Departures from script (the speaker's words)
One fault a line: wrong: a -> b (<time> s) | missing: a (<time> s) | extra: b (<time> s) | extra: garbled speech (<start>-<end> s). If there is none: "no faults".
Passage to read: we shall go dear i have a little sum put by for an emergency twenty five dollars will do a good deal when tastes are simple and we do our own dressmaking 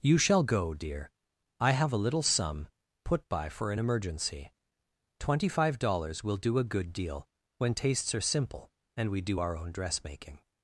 wrong: we -> you (0.0 s)